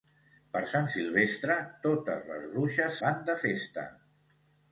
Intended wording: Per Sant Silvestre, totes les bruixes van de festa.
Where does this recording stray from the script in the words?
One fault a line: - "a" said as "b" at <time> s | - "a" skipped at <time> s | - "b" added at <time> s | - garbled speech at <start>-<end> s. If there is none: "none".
none